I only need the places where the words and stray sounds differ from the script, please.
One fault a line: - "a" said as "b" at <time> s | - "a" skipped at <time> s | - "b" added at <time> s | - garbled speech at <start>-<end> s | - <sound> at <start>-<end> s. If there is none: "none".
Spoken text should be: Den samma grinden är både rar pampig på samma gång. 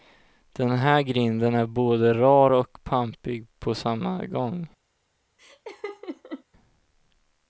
- "samma" said as "här" at 0.7 s
- "och" added at 2.5 s
- laugh at 5.4-6.4 s